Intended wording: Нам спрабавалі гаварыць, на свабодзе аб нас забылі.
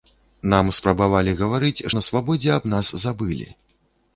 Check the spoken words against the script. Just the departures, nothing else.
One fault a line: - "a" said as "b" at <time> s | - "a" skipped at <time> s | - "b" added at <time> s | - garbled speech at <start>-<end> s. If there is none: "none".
none